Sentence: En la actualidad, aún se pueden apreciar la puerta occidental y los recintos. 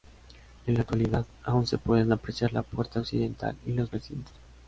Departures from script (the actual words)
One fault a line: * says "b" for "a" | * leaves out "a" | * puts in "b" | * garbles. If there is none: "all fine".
all fine